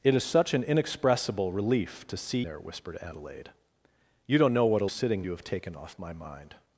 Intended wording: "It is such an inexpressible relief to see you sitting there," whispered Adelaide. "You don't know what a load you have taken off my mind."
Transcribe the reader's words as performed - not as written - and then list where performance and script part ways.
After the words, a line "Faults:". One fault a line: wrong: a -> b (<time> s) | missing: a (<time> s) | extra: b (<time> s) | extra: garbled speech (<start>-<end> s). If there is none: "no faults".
"It is such an inexpressible relief to see there," whispered Adelaide. "You don't know what a sitting you have taken off my mind."
Faults:
missing: you sitting (2.4 s)
wrong: load -> sitting (4.8 s)